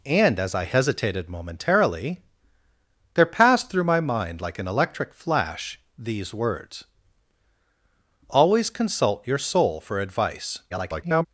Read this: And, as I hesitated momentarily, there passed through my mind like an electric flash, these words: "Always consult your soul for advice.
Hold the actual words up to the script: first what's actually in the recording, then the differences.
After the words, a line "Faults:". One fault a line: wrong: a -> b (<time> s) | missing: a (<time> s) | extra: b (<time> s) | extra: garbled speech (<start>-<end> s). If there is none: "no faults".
And, as I hesitated momentarily, there passed through my mind like an electric flash, these words: "Always consult your soul for advice. [garbled]
Faults:
extra: garbled speech (10.7-11.3 s)